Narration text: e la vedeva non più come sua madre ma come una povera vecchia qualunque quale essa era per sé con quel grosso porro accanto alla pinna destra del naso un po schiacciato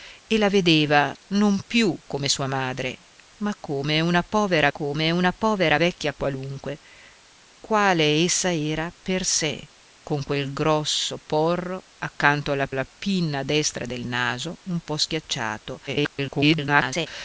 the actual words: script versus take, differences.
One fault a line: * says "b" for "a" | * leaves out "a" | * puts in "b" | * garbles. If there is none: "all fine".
* puts in "come una povera"
* puts in "alla"
* garbles